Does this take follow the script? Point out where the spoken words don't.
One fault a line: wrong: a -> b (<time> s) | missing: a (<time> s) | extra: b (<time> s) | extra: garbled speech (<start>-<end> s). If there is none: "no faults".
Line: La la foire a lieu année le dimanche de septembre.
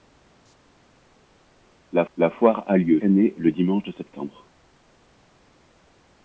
no faults